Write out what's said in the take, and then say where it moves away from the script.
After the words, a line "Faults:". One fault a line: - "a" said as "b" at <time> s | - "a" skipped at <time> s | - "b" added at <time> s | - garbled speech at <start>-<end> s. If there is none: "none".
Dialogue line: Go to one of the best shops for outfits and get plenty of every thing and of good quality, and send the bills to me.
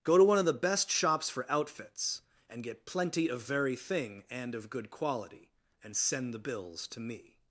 Go to one of the best shops for outfits and get plenty of very thing and of good quality, and send the bills to me.
Faults:
- "every" said as "very" at 3.4 s